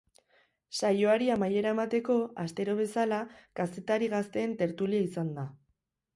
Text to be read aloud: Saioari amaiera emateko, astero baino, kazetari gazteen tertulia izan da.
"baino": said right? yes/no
no